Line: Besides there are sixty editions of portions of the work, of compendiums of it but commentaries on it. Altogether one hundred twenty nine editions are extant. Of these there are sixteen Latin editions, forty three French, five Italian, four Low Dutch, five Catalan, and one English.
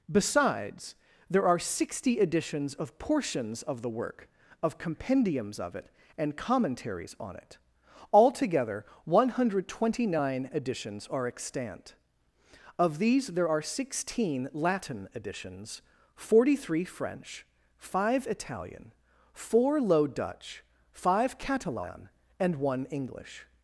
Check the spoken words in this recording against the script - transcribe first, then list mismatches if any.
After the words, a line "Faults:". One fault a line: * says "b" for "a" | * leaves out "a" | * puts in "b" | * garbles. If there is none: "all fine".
Besides there are sixty editions of portions of the work, of compendiums of it and commentaries on it. Altogether one hundred twenty nine editions are extant. Of these there are sixteen Latin editions, forty three French, five Italian, four Low Dutch, five Catalan, and one English.
Faults:
* says "and" for "but"